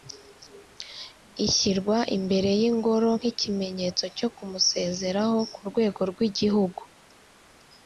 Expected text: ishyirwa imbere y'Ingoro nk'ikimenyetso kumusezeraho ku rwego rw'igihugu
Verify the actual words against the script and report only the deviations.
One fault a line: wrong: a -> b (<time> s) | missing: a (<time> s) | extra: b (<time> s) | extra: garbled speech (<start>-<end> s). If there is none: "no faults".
extra: cyo (4.2 s)